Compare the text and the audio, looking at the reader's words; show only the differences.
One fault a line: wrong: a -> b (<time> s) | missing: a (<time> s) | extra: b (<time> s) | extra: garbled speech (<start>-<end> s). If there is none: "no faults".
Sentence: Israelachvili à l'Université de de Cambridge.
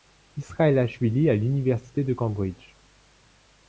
missing: de (2.1 s)